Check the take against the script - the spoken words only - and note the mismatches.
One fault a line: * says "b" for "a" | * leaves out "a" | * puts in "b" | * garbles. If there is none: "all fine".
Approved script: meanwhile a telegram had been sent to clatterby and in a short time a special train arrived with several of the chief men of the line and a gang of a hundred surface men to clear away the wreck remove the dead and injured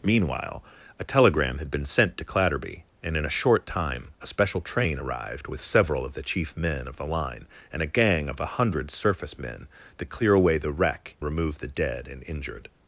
all fine